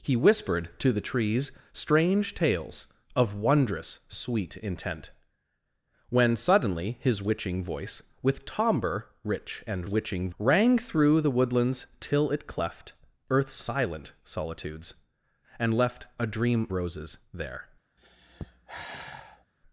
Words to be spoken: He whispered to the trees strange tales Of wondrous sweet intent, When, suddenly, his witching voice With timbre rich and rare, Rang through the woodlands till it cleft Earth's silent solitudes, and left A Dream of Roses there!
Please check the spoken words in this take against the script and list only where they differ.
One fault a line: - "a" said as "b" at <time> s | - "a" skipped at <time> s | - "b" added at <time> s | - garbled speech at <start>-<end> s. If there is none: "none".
- "rare" said as "witching" at 9.9 s
- "of" skipped at 16.7 s